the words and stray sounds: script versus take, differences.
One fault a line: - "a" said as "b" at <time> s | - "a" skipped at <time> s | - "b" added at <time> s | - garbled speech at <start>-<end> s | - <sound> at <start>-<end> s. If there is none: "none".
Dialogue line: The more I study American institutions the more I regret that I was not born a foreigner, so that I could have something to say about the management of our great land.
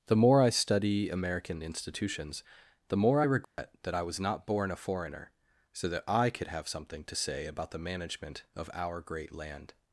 - dropout at 3.4-3.6 s